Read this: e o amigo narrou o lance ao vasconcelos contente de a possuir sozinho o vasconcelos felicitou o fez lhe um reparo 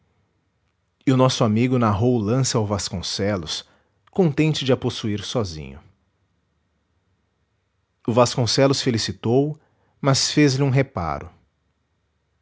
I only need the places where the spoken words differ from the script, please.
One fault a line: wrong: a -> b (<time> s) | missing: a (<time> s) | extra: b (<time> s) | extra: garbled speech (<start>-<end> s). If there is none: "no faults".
extra: nosso (1.2 s)
extra: mas (10.0 s)